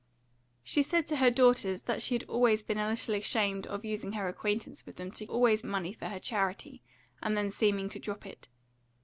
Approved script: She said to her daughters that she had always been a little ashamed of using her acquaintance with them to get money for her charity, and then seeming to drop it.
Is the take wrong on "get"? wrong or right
wrong